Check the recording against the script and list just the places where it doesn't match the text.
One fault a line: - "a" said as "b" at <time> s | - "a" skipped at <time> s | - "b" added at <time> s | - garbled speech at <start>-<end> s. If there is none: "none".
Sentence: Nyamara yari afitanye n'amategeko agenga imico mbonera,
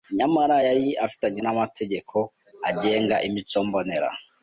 none